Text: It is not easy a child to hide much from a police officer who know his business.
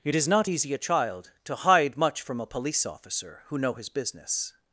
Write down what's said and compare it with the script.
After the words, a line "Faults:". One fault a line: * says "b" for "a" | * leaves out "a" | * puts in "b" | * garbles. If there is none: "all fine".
It is not easy a child to hide much from a police officer who know his business.
Faults:
all fine